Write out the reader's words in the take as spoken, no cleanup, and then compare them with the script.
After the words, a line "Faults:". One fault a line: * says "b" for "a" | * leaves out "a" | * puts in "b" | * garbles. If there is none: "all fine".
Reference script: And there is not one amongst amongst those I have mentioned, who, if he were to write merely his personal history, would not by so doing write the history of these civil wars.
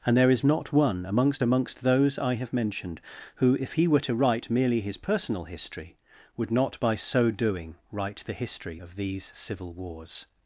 And there is not one amongst amongst those I have mentioned, who, if he were to write merely his personal history, would not by so doing write the history of these civil wars.
Faults:
all fine